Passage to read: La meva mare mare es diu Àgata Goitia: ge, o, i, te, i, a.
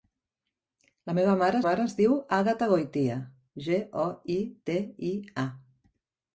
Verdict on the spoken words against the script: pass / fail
pass